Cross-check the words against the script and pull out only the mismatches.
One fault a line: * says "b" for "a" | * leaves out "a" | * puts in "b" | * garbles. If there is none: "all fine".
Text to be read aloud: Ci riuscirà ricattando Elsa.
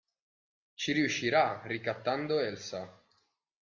all fine